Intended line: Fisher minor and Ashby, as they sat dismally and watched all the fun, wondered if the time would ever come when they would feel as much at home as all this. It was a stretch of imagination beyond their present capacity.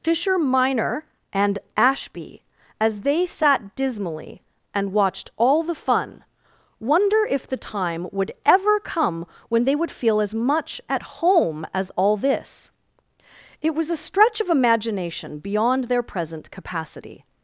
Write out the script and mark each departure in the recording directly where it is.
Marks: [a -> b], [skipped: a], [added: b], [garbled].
Fisher minor and Ashby, as they sat dismally and watched all the fun, [wondered -> wonder] if the time would ever come when they would feel as much at home as all this. It was a stretch of imagination beyond their present capacity.